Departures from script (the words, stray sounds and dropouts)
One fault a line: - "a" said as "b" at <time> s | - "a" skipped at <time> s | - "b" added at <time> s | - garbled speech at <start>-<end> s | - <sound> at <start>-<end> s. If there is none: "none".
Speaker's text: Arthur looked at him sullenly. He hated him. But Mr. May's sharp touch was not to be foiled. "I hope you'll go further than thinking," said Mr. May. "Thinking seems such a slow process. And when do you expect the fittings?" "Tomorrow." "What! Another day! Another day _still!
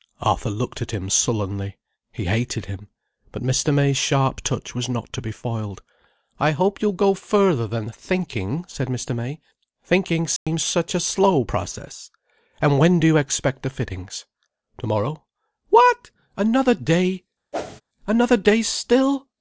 - dropout at 10.4-10.5 s
- whoosh at 17.5-17.8 s